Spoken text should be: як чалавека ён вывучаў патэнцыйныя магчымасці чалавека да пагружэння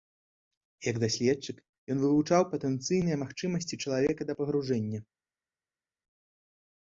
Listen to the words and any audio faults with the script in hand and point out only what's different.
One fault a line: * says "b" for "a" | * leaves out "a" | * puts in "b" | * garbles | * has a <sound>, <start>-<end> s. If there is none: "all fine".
* says "даследчык" for "чалавека"